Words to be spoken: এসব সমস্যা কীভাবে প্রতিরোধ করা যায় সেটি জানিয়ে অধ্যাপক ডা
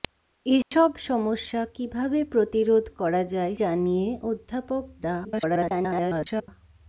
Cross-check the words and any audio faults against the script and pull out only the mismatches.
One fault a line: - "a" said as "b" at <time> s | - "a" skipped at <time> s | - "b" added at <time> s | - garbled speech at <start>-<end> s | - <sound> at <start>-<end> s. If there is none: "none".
- dropout at 0.6-0.7 s
- "সেটি" skipped at 3.5 s
- garbled speech at 5.2-6.5 s